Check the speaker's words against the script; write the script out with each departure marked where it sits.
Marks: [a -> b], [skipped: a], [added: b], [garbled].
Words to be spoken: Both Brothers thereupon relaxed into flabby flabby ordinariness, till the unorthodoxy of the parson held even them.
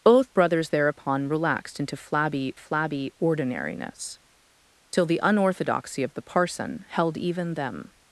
Both Brothers thereupon relaxed into flabby flabby ordinariness, till the unorthodoxy of the parson held even them.